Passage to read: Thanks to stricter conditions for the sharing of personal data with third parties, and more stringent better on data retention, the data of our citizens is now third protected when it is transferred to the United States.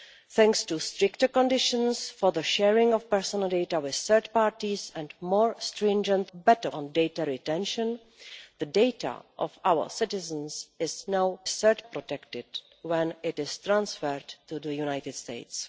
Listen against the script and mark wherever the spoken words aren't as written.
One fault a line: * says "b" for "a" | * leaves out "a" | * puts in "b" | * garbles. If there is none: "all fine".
all fine